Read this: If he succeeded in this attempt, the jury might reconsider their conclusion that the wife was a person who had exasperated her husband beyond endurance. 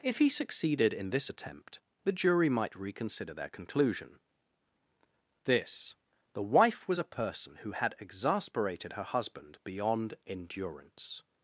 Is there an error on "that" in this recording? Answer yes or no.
yes